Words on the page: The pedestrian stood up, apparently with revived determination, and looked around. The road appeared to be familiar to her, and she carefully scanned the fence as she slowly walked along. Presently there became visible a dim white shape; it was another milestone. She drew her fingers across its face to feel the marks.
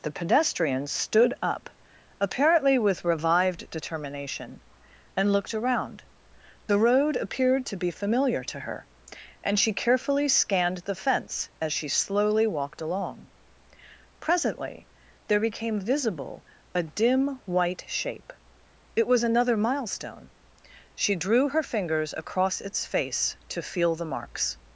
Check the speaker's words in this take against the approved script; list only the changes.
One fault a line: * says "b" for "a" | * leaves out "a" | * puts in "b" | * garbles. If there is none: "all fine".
all fine